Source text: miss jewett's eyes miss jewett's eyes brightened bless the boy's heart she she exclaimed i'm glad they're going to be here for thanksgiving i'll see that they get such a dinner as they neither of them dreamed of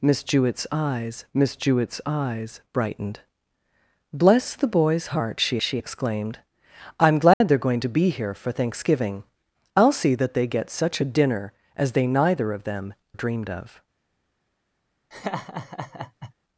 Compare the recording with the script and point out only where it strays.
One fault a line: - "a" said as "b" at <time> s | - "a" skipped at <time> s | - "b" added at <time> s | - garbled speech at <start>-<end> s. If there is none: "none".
none